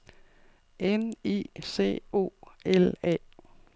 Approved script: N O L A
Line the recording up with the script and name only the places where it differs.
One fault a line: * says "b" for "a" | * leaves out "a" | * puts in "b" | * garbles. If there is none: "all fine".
* puts in "I C"